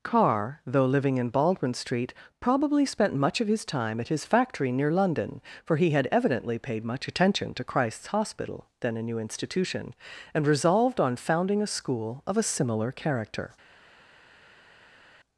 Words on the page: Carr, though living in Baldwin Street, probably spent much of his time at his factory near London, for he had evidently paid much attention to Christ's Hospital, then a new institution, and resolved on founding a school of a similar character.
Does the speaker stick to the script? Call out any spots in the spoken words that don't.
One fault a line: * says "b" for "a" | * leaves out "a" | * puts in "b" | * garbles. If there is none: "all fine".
all fine